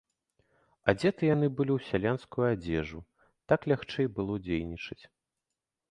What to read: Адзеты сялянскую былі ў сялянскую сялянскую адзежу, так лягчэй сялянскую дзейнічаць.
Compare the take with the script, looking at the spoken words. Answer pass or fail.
fail